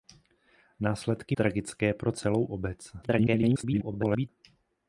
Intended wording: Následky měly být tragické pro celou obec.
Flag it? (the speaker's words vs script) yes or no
yes